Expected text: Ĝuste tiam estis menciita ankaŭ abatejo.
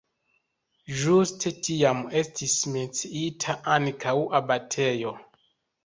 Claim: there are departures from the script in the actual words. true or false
false